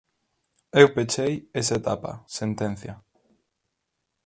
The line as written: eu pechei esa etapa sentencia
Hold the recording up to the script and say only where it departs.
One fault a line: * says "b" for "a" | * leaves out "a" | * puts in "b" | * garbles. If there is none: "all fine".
all fine